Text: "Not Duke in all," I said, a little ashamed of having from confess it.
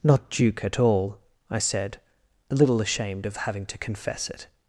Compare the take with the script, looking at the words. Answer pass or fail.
fail